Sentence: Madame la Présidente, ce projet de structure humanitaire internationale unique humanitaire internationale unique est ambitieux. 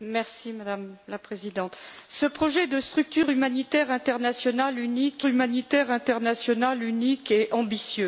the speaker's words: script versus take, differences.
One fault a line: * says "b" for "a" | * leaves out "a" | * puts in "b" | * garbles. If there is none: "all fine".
all fine